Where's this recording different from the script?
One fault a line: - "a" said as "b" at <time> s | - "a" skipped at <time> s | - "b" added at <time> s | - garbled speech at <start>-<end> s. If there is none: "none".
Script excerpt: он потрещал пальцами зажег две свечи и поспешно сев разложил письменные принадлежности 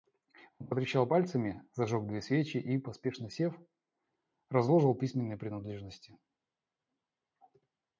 none